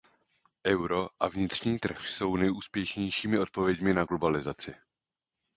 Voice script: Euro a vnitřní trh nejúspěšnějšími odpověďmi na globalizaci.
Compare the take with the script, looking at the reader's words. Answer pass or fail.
fail